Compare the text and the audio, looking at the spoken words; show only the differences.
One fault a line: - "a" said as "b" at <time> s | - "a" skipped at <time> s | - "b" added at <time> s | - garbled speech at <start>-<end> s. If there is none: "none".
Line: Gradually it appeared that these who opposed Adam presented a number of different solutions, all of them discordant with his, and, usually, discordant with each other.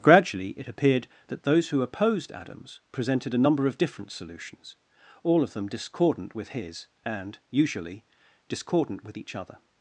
- "these" said as "those" at 1.4 s
- "Adam" said as "Adams" at 2.3 s